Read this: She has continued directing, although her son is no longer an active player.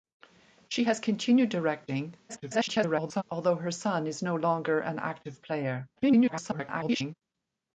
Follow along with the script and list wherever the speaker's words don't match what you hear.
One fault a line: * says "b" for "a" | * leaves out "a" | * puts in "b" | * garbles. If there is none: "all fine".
* garbles
* garbles